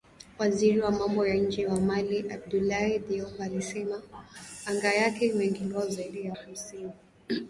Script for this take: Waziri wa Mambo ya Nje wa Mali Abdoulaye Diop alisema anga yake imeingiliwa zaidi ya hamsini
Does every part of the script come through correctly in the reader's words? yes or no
yes